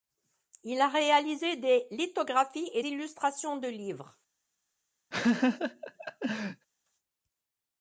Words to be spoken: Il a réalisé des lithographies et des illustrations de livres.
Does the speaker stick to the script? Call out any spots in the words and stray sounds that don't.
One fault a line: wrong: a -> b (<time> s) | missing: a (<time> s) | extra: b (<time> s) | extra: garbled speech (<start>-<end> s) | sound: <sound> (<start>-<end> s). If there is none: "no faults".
missing: des (2.8 s)
sound: laugh (5.1-6.7 s)